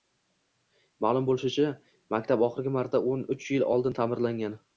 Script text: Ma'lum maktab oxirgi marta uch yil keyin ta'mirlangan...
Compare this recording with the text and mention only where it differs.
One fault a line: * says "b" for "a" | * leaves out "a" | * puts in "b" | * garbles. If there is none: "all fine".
* puts in "bo‘lishicha"
* puts in "o'n"
* says "oldin" for "keyin"